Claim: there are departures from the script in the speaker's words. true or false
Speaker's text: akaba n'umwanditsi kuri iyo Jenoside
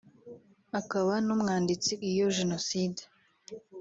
true